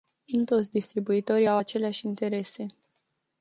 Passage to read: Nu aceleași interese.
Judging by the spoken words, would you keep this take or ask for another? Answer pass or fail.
fail